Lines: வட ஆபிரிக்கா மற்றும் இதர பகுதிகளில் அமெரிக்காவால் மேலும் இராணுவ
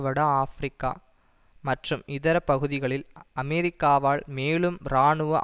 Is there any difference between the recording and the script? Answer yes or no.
no